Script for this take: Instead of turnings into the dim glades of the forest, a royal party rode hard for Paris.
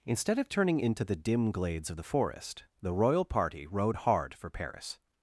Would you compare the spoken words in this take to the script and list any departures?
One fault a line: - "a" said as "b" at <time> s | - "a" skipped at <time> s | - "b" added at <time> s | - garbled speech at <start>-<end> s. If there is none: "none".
- "turnings" said as "turning" at 0.5 s
- "a" said as "the" at 2.8 s